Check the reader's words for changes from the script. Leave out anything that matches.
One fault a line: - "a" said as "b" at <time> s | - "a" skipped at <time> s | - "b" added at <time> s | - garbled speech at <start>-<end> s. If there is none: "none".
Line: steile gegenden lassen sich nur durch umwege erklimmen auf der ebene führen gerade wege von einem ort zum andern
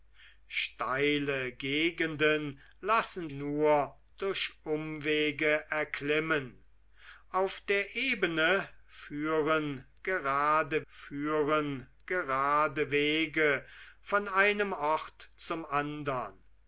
- "sich" skipped at 3.3 s
- "führen gerade" added at 10.9 s